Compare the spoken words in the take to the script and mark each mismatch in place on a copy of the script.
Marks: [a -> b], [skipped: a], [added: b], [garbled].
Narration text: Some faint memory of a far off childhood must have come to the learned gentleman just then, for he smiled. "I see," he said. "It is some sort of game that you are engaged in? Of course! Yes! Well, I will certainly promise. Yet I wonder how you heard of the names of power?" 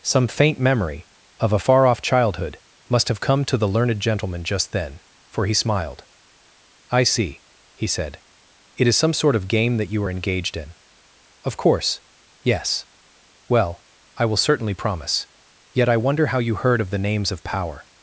Some faint memory of a far off childhood must have come to the learned gentleman just then, for he smiled. "I see," he said. "It is some sort of game that you are engaged in? Of course! Yes! Well, I will certainly promise. Yet I wonder how you heard of the names of power?"